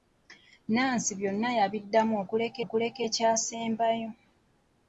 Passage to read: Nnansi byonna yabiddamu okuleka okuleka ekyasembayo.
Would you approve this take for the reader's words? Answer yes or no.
yes